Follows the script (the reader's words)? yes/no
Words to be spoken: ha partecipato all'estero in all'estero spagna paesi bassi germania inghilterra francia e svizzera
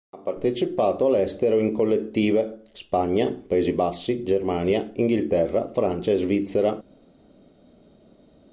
no